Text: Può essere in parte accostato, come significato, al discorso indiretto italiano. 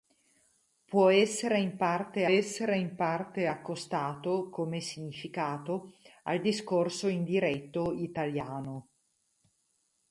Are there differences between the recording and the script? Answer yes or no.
yes